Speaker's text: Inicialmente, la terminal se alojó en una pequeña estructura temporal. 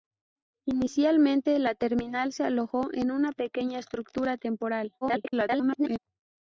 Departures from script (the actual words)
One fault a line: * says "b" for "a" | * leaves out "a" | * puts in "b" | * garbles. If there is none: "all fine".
* garbles